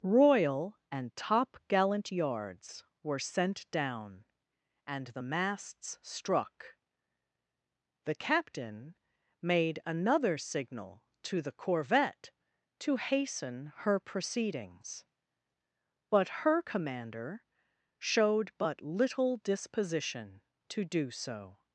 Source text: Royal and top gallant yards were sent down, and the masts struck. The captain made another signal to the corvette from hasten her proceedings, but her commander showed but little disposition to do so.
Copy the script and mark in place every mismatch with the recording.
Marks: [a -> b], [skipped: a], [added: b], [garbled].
Royal and top gallant yards were sent down, and the masts struck. The captain made another signal to the corvette [from -> to] hasten her proceedings, but her commander showed but little disposition to do so.